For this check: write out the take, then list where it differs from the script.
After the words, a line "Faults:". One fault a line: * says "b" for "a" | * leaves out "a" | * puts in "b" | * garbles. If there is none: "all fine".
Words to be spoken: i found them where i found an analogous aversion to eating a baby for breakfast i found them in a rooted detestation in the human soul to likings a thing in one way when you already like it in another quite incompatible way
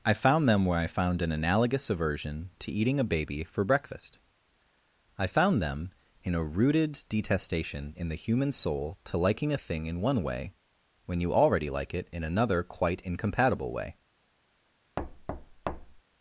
i found them where i found an analogous aversion to eating a baby for breakfast i found them in a rooted detestation in the human soul to liking a thing in one way when you already like it in another quite incompatible way
Faults:
* says "liking" for "likings"